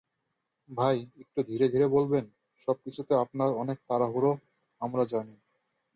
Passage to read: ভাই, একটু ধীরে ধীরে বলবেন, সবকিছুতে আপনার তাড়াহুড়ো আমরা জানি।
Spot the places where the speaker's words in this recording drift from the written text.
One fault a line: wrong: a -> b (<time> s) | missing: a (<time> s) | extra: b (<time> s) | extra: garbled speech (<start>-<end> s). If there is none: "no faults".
extra: অনেক (3.5 s)